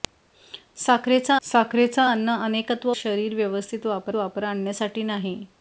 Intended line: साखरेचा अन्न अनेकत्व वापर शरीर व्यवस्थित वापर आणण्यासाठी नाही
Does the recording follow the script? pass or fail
fail